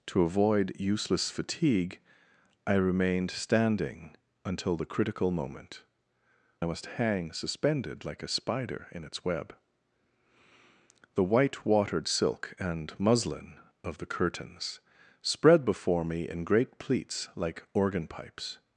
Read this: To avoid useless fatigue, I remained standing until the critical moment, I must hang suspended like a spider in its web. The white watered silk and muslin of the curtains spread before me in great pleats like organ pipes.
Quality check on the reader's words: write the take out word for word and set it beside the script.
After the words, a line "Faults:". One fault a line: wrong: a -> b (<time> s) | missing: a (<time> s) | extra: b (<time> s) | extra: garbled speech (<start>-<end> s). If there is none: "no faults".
To avoid useless fatigue, I remained standing until the critical moment, I must hang suspended like a spider in its web. The white watered silk and muslin of the curtains spread before me in great pleats like organ pipes.
Faults:
no faults